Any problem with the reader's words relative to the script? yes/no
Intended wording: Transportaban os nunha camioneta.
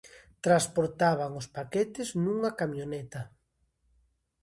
yes